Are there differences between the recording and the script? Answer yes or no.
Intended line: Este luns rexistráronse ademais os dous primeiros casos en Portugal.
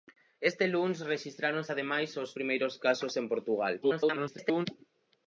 yes